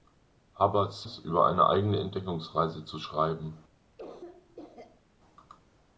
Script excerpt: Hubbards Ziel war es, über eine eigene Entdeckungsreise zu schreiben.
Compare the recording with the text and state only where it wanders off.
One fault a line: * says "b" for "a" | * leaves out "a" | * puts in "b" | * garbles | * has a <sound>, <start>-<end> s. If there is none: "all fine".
* leaves out "Ziel war"
* has a cough, 4.0-5.0 s